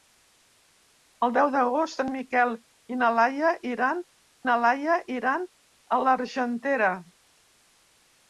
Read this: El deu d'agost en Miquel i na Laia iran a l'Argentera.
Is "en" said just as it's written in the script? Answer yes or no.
yes